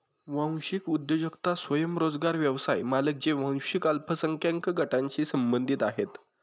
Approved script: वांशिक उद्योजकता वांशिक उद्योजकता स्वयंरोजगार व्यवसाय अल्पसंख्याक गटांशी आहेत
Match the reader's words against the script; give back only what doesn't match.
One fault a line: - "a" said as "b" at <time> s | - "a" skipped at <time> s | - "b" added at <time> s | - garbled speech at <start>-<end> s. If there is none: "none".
- "वांशिक उद्योजकता स्वयंरोजगार व्यवसाय" said as "स्वयंरोजगार व्यवसाय मालक जे वांशिक" at 1.6 s
- "संबंधित" added at 5.3 s